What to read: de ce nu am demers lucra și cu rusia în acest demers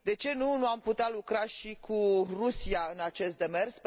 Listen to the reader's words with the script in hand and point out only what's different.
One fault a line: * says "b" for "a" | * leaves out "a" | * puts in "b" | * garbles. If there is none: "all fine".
* says "putea" for "demers"